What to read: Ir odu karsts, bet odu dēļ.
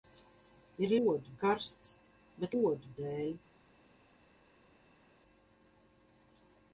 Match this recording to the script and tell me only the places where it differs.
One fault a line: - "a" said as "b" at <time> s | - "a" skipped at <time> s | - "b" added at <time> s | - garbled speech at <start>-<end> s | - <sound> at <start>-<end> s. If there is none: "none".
none